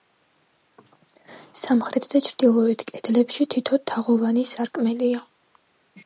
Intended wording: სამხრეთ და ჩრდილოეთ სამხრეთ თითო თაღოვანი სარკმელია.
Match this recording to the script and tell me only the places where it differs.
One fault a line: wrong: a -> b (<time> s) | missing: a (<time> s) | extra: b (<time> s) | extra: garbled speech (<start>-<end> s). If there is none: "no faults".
wrong: სამხრეთ -> კედლებში (2.9 s)